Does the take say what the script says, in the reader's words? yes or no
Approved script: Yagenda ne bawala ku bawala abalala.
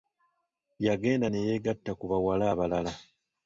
no